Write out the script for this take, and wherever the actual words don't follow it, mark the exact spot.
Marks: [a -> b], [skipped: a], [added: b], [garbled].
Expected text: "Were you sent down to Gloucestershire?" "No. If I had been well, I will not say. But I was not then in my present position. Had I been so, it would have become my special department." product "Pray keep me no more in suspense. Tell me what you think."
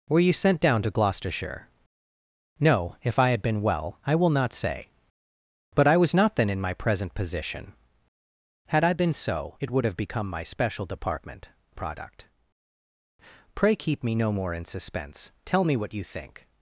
"Were you sent down to Gloucestershire?" "No. If I had been well, I will not say. But I was not then in my present position. Had I been so, it would have become my special department." product "Pray keep me no more in suspense. Tell me what you think."